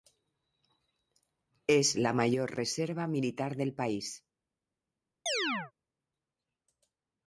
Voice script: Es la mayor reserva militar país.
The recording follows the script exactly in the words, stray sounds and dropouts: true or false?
false